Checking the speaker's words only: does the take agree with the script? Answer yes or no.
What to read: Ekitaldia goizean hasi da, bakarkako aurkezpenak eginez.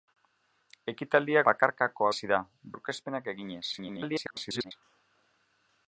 no